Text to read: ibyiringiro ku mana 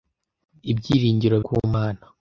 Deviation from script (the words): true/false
false